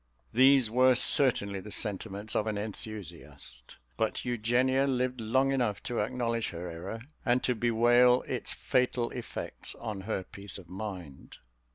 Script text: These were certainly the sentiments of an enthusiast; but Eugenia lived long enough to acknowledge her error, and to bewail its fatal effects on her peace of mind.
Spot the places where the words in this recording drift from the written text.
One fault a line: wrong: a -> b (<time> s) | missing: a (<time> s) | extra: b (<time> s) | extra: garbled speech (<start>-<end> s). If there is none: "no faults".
no faults